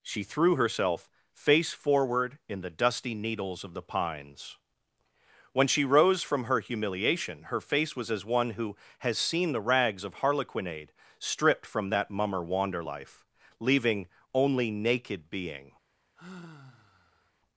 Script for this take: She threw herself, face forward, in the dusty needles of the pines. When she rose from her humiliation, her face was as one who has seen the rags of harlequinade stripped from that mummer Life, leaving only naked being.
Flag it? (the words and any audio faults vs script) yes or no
yes